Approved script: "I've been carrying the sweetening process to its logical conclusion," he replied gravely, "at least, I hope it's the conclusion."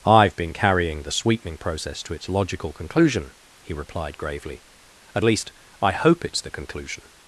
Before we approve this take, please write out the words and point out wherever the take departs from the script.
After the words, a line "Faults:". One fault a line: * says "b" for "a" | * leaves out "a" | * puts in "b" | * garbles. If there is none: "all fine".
"I've been carrying the sweetening process to its logical conclusion," he replied gravely, "at least, I hope it's the conclusion."
Faults:
all fine